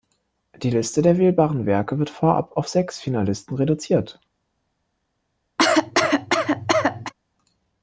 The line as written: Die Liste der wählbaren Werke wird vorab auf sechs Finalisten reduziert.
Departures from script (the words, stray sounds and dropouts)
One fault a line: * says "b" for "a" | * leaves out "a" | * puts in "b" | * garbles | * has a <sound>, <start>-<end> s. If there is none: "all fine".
* has a cough, 5.6-7.1 s